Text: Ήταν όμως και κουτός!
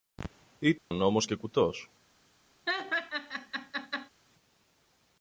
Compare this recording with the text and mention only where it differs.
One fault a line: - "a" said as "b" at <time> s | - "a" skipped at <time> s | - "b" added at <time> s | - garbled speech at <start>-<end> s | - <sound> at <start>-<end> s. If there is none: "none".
- dropout at 0.8-0.9 s
- laugh at 2.7-4.1 s